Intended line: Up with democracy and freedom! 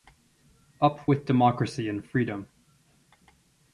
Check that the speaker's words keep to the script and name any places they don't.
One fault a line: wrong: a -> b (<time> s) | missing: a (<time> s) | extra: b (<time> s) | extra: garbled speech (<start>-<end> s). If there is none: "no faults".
no faults